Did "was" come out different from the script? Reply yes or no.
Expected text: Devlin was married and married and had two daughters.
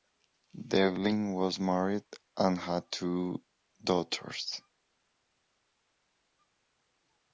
no